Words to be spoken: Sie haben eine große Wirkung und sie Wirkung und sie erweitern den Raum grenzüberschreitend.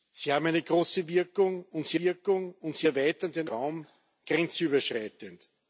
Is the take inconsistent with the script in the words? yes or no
no